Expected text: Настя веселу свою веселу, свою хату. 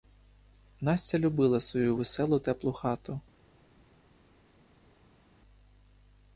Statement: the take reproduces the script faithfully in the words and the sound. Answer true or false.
false